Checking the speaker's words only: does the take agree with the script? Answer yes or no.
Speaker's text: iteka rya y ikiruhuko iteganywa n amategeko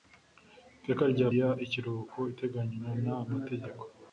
yes